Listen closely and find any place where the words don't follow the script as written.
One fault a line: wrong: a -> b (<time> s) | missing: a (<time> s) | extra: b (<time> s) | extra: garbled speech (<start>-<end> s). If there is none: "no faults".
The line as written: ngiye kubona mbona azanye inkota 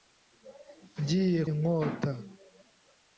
missing: kubona mbona azanye (1.4 s)